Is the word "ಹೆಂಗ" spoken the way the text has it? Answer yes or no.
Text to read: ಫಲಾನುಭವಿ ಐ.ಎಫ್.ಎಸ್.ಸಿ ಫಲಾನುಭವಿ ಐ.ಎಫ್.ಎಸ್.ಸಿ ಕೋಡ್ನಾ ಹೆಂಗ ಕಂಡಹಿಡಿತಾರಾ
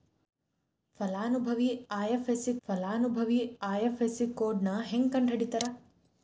yes